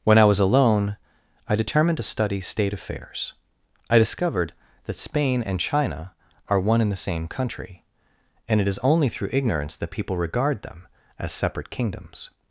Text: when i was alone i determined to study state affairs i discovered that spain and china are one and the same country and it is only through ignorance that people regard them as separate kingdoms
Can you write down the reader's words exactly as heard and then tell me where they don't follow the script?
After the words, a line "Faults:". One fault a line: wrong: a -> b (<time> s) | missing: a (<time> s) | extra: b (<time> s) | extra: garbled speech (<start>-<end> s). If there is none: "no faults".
when i was alone i determined to study state affairs i discovered that spain and china are one and the same country and it is only through ignorance that people regard them as separate kingdoms
Faults:
no faults